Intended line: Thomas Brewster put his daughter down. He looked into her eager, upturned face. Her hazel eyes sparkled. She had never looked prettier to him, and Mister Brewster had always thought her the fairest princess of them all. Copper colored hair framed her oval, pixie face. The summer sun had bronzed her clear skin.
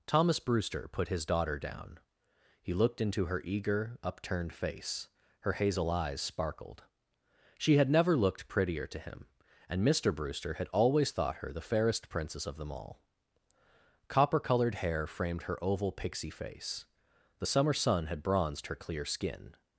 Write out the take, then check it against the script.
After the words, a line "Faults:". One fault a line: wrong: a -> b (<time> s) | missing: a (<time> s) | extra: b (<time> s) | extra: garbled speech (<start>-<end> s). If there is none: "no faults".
Thomas Brewster put his daughter down. He looked into her eager, upturned face. Her hazel eyes sparkled. She had never looked prettier to him, and Mister Brewster had always thought her the fairest princess of them all. Copper colored hair framed her oval, pixie face. The summer sun had bronzed her clear skin.
Faults:
no faults